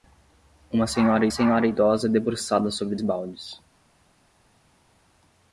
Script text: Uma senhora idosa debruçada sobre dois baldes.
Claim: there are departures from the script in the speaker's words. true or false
true